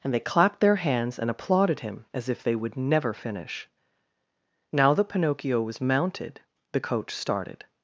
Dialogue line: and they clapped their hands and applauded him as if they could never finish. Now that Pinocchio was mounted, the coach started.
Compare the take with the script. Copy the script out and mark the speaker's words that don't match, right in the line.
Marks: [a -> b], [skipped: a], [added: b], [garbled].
and they clapped their hands and applauded him as if they [could -> would] never finish. Now that Pinocchio was mounted, the coach started.